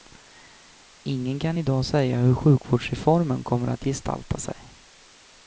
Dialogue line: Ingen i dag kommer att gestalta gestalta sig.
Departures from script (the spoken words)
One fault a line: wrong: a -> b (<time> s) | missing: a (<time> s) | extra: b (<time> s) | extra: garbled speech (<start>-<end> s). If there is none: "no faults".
extra: kan (1.4 s)
extra: säga hur sjukvårdsreformen (1.8 s)
missing: gestalta (4.4 s)